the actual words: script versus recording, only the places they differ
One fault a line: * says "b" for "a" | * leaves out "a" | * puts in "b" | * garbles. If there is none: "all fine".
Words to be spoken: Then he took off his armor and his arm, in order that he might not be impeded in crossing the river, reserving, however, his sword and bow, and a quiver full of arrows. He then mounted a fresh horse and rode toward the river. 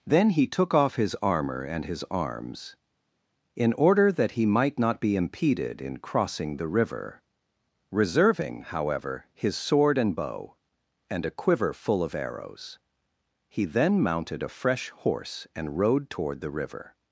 * says "arms" for "arm"